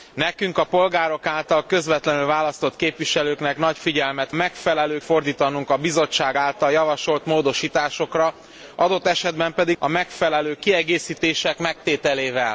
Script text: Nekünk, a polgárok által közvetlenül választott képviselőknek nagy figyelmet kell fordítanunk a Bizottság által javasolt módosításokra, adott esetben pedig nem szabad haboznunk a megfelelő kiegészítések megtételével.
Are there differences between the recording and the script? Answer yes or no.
yes